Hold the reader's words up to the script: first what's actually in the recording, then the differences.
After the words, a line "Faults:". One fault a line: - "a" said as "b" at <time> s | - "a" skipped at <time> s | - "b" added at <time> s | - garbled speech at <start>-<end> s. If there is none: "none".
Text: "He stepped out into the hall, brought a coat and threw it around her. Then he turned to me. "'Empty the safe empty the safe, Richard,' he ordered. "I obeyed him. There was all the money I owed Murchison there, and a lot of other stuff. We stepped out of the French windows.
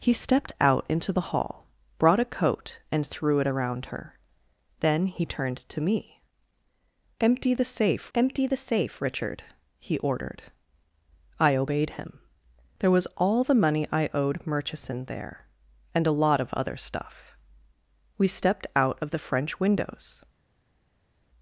"He stepped out into the hall, brought a coat and threw it around her. Then he turned to me. "'Empty the safe empty the safe, Richard,' he ordered. "I obeyed him. There was all the money I owed Murchison there, and a lot of other stuff. We stepped out of the French windows.
Faults:
none